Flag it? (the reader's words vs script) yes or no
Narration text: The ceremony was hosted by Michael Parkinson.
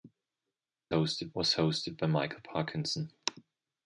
yes